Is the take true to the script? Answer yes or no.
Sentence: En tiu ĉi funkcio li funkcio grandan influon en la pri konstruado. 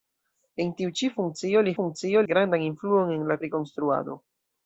yes